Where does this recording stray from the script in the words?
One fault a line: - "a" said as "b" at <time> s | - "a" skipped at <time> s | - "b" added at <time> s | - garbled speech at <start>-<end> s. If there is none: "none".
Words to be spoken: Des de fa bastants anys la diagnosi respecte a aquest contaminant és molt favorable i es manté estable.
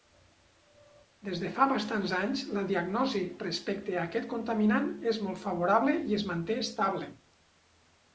none